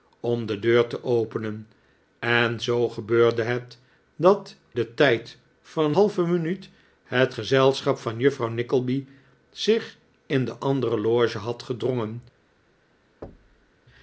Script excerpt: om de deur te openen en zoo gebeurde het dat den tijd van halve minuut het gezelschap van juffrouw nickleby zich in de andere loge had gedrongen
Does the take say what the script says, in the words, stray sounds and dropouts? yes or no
no